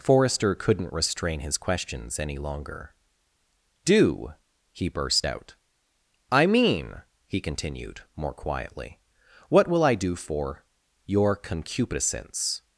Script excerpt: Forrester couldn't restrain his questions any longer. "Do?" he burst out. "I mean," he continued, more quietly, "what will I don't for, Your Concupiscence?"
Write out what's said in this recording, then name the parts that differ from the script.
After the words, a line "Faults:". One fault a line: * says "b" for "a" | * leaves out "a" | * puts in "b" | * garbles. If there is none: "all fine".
Forrester couldn't restrain his questions any longer. "Do?" he burst out. "I mean," he continued, more quietly, "what will I do for, Your Concupiscence?"
Faults:
* says "do" for "don't"